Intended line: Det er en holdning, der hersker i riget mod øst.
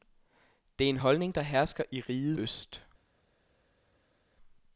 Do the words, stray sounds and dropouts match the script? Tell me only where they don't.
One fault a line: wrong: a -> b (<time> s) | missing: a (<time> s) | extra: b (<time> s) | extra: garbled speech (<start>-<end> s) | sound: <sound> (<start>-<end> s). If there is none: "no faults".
missing: mod (2.4 s)